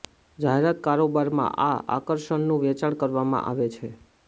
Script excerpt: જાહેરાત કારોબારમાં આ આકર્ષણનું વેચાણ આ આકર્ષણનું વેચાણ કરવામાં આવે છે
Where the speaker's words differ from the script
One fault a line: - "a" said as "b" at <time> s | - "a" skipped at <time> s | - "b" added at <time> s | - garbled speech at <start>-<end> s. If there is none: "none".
- "આ આકર્ષણનું વેચાણ" skipped at 3.0 s